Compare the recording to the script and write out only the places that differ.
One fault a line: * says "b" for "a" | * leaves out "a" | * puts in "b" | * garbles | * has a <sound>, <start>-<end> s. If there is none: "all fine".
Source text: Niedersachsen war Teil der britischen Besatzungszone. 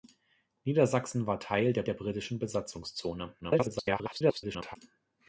* puts in "der"
* garbles